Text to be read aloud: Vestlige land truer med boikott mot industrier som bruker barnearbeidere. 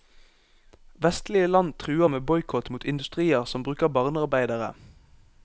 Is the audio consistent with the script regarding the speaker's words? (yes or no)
yes